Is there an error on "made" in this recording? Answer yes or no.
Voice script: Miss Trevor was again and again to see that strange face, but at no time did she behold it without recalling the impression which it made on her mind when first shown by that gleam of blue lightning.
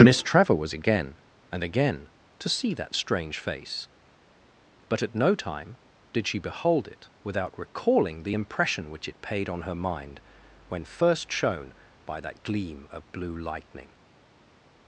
yes